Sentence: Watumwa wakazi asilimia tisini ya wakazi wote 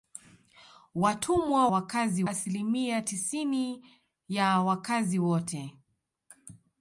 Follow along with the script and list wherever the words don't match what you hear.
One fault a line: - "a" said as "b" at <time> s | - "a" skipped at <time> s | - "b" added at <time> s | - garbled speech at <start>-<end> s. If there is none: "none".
none